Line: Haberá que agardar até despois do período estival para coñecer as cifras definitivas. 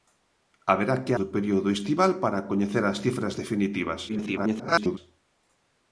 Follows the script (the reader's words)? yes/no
no